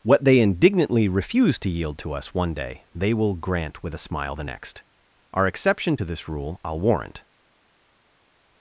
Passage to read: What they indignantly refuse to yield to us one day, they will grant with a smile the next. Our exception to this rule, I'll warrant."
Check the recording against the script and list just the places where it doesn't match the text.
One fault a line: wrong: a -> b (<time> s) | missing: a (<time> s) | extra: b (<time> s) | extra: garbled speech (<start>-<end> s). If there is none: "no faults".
no faults